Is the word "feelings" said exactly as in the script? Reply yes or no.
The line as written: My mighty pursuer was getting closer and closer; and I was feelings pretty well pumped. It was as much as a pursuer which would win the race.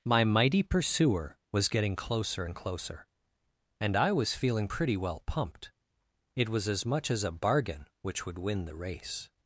no